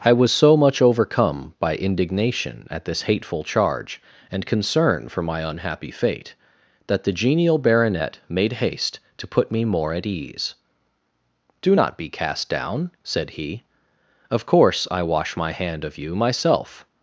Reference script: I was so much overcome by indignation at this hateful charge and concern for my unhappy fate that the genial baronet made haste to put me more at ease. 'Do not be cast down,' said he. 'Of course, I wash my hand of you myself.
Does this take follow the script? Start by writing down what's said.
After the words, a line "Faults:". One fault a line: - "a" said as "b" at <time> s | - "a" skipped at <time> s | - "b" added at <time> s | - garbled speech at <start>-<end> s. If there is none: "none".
I was so much overcome by indignation at this hateful charge and concern for my unhappy fate that the genial baronet made haste to put me more at ease. 'Do not be cast down,' said he. 'Of course, I wash my hand of you myself.
Faults:
none